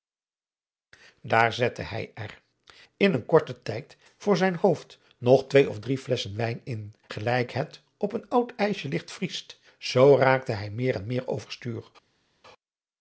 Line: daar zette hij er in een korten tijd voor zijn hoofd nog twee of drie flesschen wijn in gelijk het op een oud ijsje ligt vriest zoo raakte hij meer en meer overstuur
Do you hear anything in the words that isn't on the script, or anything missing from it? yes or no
no